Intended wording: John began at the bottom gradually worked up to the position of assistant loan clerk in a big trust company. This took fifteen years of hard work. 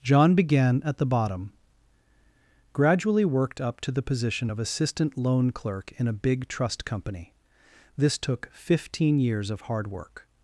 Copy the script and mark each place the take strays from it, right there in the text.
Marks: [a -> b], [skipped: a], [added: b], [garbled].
John began at the bottom gradually worked up to the position of assistant loan clerk in a big trust company. This took fifteen years of hard work.